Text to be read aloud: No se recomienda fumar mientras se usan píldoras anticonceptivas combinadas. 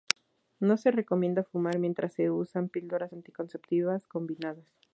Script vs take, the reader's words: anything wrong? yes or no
no